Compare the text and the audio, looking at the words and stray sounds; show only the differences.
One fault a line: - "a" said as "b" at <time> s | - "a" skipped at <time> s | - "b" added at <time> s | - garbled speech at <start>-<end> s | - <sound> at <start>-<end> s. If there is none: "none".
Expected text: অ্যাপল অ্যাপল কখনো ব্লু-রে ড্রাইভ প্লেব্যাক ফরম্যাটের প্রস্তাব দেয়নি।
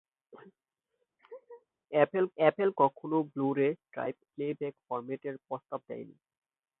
- laugh at 1.2-1.7 s